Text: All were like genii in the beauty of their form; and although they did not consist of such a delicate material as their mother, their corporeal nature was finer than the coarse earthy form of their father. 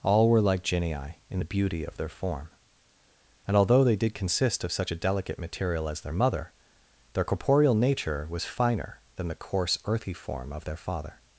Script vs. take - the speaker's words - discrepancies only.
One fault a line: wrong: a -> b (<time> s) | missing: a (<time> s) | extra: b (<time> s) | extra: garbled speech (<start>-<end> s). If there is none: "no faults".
missing: not (4.1 s)